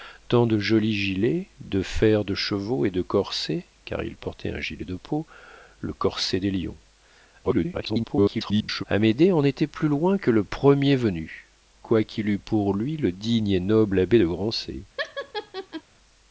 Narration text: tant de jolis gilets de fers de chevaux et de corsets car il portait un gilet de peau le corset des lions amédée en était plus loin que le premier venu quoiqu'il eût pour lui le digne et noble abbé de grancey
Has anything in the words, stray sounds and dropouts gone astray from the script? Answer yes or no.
yes